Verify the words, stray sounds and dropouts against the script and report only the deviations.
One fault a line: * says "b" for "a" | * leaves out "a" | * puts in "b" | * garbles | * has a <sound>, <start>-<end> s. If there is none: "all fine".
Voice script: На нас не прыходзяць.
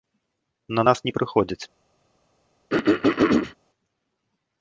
* has a throat clearing, 2.7-3.6 s